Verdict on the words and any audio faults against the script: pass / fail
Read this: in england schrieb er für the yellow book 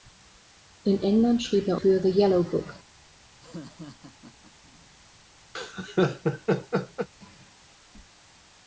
fail